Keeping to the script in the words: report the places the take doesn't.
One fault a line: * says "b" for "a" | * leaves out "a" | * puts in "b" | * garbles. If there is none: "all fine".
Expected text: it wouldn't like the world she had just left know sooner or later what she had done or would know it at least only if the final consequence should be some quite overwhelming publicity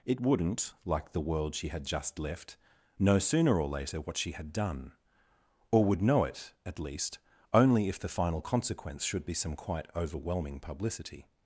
all fine